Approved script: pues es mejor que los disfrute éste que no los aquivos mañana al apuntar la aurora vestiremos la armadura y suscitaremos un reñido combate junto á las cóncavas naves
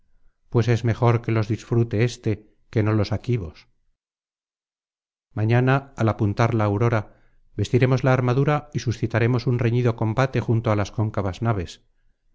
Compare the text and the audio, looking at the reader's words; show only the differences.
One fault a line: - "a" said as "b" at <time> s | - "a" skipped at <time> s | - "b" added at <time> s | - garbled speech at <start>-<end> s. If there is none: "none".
none